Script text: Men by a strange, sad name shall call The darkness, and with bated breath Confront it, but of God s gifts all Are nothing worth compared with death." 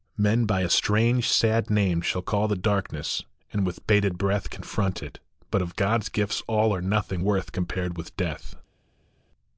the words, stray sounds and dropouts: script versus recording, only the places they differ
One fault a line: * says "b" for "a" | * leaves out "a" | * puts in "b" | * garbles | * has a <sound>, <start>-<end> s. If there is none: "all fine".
all fine